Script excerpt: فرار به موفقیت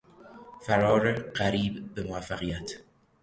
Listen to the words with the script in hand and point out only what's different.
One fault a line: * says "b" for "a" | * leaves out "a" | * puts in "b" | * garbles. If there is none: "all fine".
* puts in "قریب"